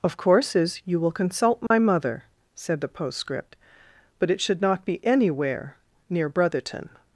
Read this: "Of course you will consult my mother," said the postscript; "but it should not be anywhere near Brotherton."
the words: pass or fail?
fail